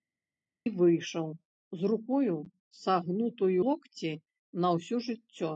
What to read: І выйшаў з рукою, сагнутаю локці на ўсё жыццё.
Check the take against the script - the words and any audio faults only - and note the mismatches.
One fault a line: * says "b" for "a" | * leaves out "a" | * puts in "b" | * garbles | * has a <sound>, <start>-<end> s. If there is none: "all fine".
all fine